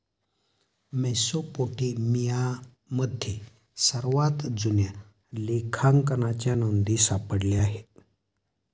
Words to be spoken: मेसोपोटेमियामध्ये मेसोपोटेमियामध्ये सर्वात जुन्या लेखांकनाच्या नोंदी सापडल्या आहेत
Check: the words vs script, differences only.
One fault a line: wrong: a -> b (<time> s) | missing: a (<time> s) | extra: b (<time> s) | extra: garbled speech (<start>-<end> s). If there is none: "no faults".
missing: मेसोपोटेमियामध्ये (2.0 s)